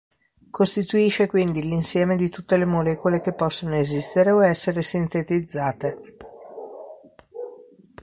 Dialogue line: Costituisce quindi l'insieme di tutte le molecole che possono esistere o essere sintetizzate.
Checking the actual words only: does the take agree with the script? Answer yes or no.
yes